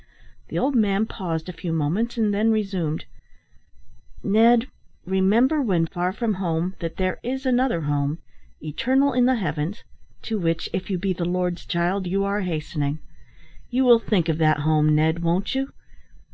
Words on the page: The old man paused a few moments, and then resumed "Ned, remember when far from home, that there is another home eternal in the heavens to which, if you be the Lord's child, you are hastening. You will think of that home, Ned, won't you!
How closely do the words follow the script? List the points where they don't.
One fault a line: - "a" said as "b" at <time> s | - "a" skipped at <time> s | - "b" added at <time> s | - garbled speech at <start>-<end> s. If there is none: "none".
none